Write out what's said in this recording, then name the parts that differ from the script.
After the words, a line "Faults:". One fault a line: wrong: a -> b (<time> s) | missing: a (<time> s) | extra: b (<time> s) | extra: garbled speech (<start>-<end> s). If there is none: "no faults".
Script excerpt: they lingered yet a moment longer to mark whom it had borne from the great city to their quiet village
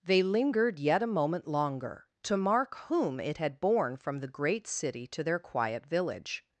they lingered yet a moment longer to mark whom it had borne from the great city to their quiet village
Faults:
no faults